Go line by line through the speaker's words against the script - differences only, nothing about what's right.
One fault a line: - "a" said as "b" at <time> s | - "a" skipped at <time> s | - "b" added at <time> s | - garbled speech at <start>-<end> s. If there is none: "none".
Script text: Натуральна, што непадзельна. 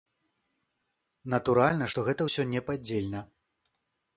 - "гэта ўсё" added at 2.1 s